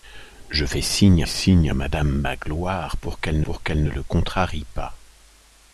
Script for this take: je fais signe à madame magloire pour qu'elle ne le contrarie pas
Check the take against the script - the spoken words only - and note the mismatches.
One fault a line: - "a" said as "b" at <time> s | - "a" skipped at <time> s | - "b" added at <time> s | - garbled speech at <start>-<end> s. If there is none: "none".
- "signe" added at 1.3 s
- "pour qu'elle" added at 3.4 s